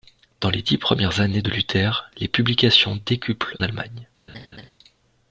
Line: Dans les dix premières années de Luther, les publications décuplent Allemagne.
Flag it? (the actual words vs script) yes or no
no